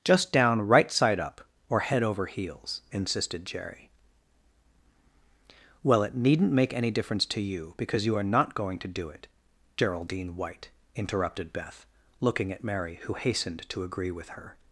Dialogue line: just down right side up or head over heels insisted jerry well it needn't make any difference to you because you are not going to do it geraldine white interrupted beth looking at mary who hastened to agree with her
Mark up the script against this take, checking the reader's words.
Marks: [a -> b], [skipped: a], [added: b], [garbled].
just down right side up or head over heels insisted jerry well it needn't make any difference to you because you are not going to do it geraldine white interrupted beth looking at mary who hastened to agree with her